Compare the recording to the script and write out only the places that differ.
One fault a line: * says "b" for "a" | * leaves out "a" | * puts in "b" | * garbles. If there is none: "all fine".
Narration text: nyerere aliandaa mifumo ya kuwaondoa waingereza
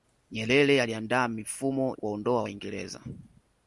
* leaves out "ya"